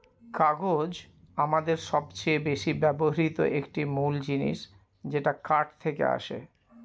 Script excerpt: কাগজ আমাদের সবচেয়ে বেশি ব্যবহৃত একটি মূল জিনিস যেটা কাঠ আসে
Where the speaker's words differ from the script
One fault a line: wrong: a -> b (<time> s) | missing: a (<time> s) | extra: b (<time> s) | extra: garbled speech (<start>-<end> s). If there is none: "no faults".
extra: থেকে (5.8 s)